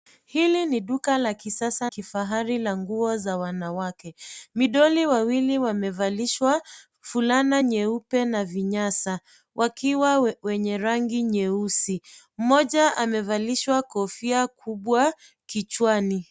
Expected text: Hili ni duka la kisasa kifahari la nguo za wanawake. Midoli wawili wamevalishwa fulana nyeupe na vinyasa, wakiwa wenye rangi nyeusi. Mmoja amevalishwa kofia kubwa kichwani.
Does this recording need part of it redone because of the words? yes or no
no